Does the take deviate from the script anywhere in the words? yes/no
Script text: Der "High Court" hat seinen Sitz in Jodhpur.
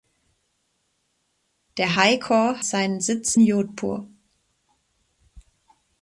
yes